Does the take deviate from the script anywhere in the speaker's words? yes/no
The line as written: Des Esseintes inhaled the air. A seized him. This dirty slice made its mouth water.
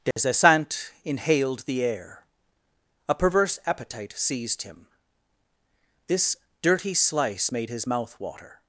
yes